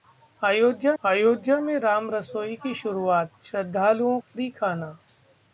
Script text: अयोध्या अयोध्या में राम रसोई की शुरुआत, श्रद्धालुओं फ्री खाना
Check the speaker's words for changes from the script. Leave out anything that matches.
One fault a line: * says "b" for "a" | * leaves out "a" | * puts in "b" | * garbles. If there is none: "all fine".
all fine